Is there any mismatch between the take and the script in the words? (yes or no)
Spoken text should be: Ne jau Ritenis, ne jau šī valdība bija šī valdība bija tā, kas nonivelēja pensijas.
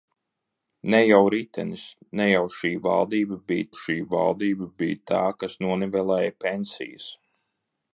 no